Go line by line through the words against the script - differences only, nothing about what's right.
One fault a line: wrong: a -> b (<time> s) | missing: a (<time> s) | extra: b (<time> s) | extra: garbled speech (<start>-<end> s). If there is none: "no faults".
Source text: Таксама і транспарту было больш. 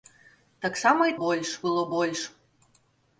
wrong: транспарту -> больш (1.2 s)